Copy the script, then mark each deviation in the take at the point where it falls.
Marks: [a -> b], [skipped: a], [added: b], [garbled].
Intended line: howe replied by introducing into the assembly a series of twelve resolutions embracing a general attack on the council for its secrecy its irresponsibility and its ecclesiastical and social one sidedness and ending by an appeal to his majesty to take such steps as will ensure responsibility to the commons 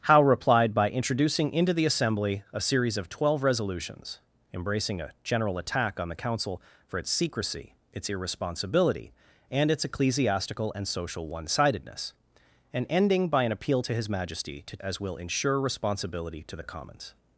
howe replied by introducing into the assembly a series of twelve resolutions embracing a general attack on the council for its secrecy its irresponsibility and its ecclesiastical and social one sidedness and ending by an appeal to his majesty to [skipped: take such steps] as will ensure responsibility to the commons